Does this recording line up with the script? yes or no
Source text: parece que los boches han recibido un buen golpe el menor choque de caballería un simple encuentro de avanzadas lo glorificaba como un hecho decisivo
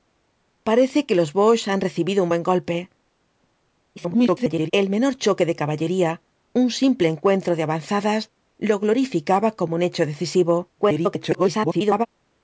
no